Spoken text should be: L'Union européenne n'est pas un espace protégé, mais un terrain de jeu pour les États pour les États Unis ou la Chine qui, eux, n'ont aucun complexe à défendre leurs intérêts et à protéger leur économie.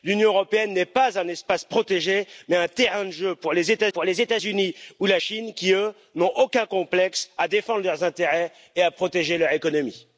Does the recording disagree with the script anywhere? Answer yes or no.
no